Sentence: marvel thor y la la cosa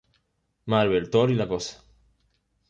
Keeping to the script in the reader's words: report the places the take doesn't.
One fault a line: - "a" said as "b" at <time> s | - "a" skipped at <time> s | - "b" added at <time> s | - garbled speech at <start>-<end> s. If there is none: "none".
- "la" skipped at 1.5 s